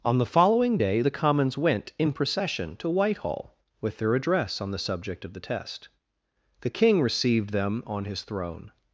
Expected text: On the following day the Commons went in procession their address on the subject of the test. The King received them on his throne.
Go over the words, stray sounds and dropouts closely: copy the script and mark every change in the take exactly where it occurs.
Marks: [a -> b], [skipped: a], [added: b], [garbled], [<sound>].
On the following day the Commons went in procession [added: to Whitehall with] their address on the subject of the test. The King received them on his throne.